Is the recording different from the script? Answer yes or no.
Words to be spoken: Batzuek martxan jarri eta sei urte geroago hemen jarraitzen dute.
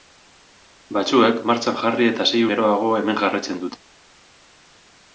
yes